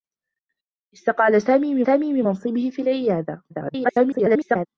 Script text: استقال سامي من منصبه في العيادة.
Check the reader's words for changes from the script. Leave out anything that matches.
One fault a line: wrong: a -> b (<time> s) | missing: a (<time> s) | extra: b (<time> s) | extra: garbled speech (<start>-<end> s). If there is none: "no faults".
extra: سامي من (1.8 s)
extra: garbled speech (3.5-4.7 s)